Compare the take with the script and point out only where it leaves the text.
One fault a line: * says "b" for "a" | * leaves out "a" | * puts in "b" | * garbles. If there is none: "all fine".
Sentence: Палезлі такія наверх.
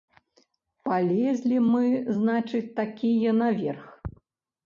* puts in "мы значыць"